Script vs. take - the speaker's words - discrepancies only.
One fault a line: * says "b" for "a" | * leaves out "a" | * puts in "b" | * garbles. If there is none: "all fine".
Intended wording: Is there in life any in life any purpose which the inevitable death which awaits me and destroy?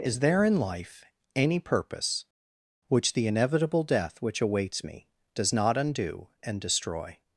* leaves out "in life any"
* puts in "does not undo"